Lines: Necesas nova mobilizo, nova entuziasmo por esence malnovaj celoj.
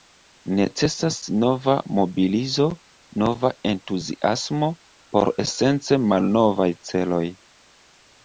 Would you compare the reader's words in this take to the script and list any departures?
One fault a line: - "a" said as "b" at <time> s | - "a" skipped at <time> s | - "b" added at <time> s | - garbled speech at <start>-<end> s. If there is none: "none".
none